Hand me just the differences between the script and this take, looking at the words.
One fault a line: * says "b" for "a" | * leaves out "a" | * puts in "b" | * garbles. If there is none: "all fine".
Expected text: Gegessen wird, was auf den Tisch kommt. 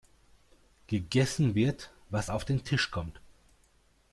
all fine